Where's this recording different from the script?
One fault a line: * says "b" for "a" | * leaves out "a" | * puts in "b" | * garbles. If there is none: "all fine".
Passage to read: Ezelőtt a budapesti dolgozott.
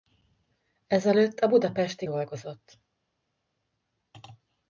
all fine